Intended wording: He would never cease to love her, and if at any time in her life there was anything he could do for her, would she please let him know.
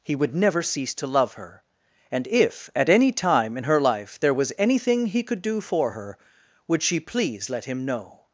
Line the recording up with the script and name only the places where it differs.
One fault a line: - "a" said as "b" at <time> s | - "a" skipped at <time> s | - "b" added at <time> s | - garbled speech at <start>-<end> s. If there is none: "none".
none